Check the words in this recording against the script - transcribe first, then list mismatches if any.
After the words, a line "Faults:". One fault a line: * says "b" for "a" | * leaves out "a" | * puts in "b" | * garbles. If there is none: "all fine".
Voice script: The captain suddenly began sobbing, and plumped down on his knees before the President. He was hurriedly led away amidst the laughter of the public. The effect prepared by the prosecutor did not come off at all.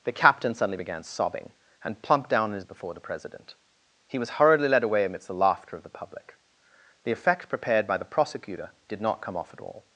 The captain suddenly began sobbing, and plumped down on his before the President. He was hurriedly led away amidst the laughter of the public. The effect prepared by the prosecutor did not come off at all.
Faults:
* leaves out "knees"